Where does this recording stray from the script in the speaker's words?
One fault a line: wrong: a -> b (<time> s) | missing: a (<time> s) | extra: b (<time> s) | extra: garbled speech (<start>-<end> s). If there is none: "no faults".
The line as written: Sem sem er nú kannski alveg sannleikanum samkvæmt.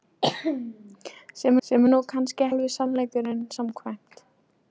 no faults